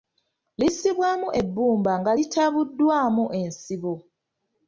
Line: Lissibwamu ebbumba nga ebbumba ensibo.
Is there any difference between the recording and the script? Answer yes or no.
yes